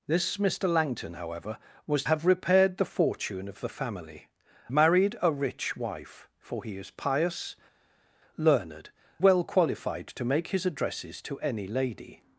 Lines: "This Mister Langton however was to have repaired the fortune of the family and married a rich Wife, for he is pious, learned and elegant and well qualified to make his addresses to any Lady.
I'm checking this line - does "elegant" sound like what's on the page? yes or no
no